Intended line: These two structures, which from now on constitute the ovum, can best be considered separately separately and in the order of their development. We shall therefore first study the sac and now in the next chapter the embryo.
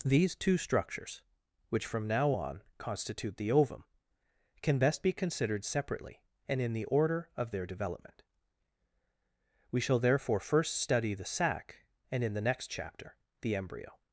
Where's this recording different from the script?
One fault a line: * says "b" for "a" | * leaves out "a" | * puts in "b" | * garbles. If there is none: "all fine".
* leaves out "separately"
* leaves out "now"